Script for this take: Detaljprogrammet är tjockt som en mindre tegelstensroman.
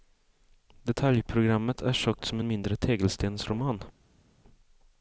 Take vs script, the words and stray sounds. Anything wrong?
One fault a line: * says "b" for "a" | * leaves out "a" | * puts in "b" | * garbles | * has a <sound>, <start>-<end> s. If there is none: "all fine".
all fine